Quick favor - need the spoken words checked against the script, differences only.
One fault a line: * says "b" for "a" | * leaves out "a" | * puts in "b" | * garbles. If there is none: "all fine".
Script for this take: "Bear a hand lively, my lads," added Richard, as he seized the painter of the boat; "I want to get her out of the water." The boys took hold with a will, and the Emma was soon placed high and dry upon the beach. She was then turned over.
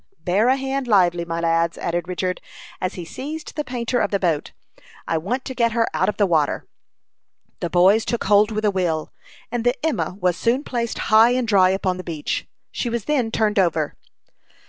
all fine